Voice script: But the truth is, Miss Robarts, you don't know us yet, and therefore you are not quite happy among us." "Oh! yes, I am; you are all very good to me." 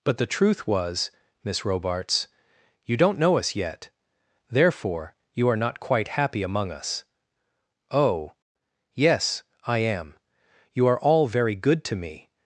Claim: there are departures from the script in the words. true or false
true